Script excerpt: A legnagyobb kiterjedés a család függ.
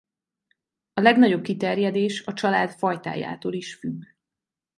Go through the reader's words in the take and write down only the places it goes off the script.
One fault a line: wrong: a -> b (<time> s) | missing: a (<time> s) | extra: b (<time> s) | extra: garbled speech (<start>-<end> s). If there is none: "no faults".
extra: fajtájától is (2.7 s)